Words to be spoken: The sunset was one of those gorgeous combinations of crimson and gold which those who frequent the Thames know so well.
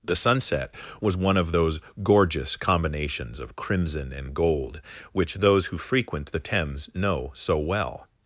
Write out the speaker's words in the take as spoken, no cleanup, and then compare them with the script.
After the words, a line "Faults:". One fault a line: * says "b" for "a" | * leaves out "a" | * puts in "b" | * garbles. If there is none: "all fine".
The sunset was one of those gorgeous combinations of crimson and gold which those who frequent the Thames know so well.
Faults:
all fine